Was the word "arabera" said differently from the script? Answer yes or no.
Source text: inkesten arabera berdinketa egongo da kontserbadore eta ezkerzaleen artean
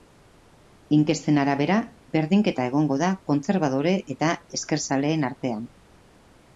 no